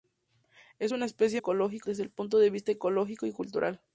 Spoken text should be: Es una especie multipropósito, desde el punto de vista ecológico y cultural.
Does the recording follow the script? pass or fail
fail